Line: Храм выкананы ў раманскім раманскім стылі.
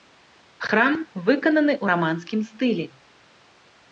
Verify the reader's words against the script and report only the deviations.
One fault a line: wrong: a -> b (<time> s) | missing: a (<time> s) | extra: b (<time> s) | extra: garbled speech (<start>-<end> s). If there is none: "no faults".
missing: раманскім (2.4 s)